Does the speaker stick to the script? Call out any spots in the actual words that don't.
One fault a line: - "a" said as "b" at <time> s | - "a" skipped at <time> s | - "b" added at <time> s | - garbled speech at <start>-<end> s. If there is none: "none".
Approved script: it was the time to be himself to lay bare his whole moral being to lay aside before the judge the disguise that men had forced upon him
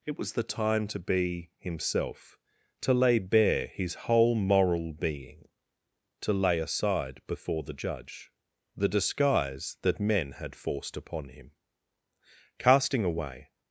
- "casting away" added at 12.6 s